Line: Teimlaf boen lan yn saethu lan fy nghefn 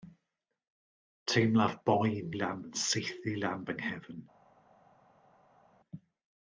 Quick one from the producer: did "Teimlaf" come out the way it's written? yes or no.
yes